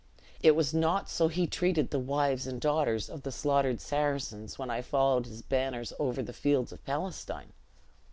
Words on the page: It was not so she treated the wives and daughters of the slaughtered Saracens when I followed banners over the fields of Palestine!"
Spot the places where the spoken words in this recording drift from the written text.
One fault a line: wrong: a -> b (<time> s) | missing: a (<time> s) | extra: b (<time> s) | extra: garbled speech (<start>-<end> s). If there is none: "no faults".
wrong: she -> he (1.3 s)
extra: his (5.3 s)